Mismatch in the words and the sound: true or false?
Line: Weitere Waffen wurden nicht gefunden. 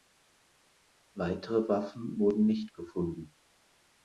false